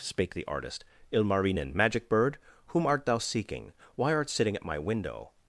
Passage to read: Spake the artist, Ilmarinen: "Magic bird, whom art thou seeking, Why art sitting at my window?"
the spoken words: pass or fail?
pass